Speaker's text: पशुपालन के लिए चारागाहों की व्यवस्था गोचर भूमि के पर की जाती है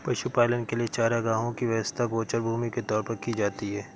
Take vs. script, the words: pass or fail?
fail